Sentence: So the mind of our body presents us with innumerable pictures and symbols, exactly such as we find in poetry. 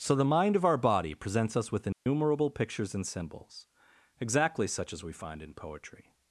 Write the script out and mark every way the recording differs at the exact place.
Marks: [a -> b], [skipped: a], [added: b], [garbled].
So the mind of our body presents us with innumerable pictures and symbols, exactly such as we find in poetry.